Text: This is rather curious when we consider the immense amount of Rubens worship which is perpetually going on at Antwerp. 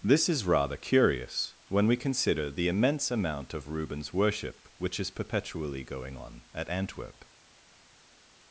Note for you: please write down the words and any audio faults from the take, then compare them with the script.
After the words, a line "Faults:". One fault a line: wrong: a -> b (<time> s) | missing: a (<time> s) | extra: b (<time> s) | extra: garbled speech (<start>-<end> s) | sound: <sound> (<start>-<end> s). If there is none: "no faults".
This is rather curious when we consider the immense amount of Rubens worship which is perpetually going on at Antwerp.
Faults:
no faults